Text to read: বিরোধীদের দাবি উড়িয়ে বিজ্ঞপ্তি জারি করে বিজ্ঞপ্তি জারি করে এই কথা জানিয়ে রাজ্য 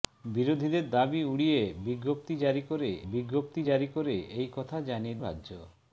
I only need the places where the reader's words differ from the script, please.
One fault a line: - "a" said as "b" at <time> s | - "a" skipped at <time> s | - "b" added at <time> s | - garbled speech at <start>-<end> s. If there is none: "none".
none